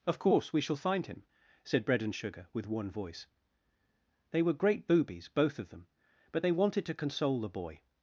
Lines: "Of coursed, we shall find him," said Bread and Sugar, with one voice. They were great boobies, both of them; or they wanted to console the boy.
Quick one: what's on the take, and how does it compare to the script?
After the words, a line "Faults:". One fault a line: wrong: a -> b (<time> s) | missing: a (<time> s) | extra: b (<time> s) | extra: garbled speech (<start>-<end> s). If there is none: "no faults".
"Of course, we shall find him," said Bread and Sugar, with one voice. They were great boobies, both of them; but they wanted to console the boy.
Faults:
wrong: coursed -> course (0.2 s)
wrong: or -> but (6.3 s)